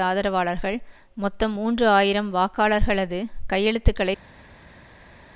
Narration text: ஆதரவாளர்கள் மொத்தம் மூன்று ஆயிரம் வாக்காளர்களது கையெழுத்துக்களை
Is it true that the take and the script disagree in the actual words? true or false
false